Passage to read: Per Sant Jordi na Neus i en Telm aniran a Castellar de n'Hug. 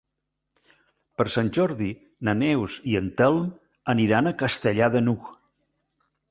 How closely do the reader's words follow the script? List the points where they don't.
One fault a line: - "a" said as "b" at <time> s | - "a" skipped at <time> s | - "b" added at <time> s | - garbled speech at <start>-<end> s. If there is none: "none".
none